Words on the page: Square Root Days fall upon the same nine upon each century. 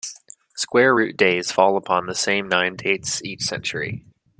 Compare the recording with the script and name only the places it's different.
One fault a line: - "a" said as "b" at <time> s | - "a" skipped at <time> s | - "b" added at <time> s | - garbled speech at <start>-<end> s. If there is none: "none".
- "upon" said as "dates" at 2.7 s